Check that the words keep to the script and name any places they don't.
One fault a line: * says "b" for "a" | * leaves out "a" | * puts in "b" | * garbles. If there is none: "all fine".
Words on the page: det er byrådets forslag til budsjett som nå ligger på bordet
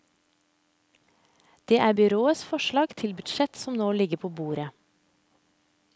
all fine